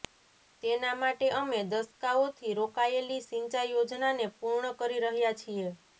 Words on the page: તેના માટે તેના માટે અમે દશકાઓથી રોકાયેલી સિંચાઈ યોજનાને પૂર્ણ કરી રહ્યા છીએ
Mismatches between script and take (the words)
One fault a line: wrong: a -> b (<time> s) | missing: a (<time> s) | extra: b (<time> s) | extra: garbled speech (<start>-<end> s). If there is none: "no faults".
missing: તેના માટે (1.3 s)